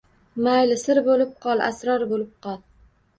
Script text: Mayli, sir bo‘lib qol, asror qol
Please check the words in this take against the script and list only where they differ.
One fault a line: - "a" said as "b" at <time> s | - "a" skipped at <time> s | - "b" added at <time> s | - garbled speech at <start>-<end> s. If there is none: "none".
- "bo‘lib" added at 2.1 s